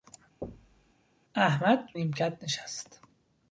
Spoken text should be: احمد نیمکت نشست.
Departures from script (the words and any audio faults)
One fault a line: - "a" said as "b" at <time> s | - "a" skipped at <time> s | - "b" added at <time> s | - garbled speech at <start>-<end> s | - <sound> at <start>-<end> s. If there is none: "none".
- thud at 0.4-0.9 s